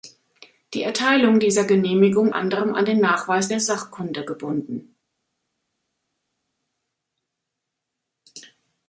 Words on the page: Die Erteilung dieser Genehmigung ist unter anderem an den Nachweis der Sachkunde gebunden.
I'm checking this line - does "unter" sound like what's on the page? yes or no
no